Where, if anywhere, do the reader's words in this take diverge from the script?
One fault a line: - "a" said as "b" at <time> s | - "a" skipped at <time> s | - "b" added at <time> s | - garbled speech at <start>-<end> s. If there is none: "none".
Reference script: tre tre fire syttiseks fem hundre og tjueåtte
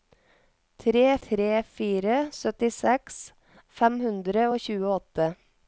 none